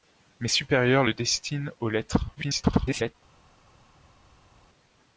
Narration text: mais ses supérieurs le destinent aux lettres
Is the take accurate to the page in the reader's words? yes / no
no